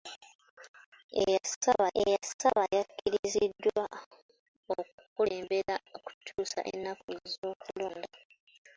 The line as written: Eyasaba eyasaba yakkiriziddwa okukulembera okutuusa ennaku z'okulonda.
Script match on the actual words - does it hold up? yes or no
yes